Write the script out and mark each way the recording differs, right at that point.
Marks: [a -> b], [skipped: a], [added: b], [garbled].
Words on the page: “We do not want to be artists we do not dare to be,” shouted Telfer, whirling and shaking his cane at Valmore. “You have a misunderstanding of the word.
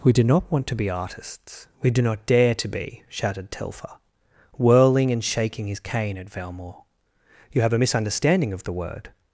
“We do not want to be artists we do not dare to be,” shouted Telfer, whirling and shaking his cane at Valmore. “You have a misunderstanding of the word.